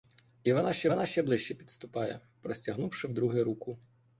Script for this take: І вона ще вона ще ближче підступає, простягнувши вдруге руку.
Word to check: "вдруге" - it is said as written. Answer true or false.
true